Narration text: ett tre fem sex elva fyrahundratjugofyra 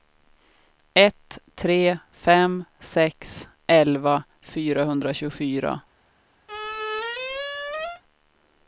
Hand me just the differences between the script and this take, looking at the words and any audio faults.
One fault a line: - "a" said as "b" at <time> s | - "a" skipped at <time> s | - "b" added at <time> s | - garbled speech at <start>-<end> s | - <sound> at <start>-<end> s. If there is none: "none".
- squeak at 6.5-8.0 s